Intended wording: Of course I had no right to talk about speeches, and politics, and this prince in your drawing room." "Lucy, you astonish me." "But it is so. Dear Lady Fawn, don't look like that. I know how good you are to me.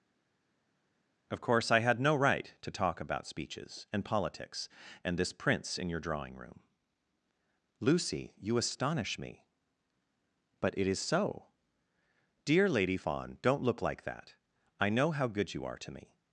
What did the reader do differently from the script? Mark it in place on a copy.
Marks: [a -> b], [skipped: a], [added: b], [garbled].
Of course I had no right to talk about speeches, and politics, and this prince in your drawing room." "Lucy, you astonish me." "But it is so. Dear Lady Fawn, don't look like that. I know how good you are to me.